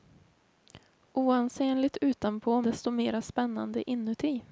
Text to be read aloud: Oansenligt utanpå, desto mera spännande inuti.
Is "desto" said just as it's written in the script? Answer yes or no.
yes